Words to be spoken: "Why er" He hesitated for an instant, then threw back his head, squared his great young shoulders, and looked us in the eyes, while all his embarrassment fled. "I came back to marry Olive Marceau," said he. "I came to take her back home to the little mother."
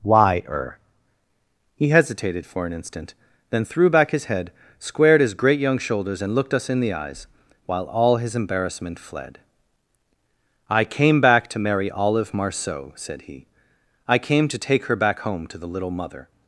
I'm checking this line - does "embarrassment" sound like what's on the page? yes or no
yes